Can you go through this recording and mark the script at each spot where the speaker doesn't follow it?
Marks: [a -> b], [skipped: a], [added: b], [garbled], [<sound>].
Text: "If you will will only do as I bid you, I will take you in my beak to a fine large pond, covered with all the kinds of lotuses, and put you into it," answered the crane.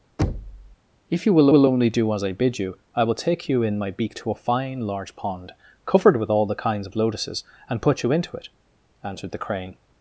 [thud] "If you will will only do as I bid you, I will take you in my beak to a fine large pond, covered with all the kinds of lotuses, and put you into it," answered the crane.